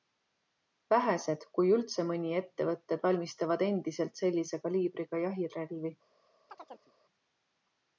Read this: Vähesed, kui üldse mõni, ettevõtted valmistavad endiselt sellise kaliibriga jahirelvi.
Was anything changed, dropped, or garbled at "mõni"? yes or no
no